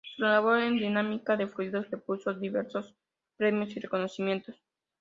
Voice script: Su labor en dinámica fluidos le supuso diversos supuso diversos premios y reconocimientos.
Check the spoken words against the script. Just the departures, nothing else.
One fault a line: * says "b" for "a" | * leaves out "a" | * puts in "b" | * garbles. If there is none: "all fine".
* puts in "de"
* leaves out "supuso diversos"